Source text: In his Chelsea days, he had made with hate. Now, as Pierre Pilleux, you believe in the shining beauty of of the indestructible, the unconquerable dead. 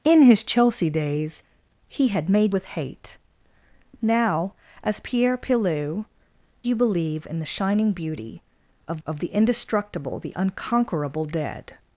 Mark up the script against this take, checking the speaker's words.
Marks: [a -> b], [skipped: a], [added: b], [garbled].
In his Chelsea days, he had made with hate. Now, as Pierre Pilleux, you believe in the shining beauty of of the indestructible, the unconquerable dead.